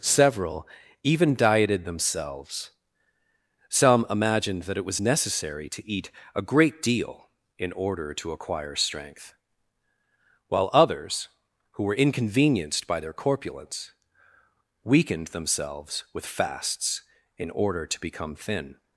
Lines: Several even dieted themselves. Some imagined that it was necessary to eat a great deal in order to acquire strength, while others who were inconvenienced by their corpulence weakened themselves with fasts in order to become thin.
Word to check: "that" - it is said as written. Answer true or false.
true